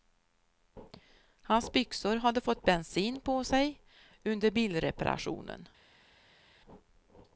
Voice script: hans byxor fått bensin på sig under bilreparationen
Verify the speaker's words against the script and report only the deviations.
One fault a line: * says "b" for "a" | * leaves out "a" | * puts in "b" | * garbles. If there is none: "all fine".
* puts in "hade"